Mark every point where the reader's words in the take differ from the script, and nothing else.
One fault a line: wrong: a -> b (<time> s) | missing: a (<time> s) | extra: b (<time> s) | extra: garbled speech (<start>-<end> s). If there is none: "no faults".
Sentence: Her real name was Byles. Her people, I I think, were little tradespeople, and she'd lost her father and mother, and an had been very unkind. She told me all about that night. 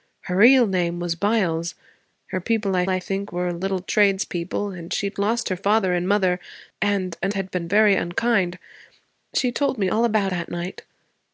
no faults